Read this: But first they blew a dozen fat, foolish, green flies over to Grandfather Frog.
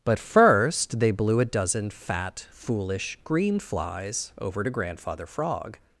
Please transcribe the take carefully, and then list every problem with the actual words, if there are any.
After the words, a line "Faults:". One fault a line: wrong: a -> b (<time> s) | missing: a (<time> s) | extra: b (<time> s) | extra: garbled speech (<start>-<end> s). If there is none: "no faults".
But first they blew a dozen fat, foolish, green flies over to Grandfather Frog.
Faults:
no faults